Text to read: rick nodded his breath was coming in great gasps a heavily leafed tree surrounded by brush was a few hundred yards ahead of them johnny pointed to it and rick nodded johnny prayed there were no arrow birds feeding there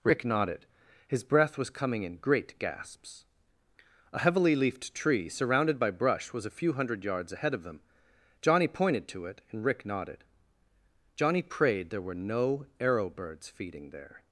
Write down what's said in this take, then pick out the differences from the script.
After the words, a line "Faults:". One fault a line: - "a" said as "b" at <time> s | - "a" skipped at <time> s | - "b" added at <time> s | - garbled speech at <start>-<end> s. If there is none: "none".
rick nodded his breath was coming in great gasps a heavily leafed tree surrounded by brush was a few hundred yards ahead of them johnny pointed to it and rick nodded johnny prayed there were no arrow birds feeding there
Faults:
none